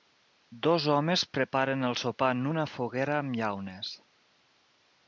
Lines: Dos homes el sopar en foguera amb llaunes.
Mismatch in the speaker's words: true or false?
true